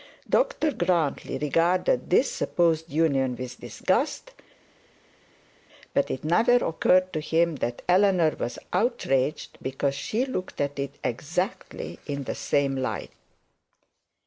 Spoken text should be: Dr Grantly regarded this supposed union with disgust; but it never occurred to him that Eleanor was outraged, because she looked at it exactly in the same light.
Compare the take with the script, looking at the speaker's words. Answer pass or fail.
pass